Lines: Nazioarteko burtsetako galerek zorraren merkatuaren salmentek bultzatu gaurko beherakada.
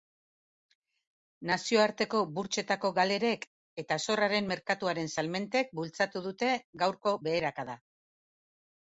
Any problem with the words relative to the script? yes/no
yes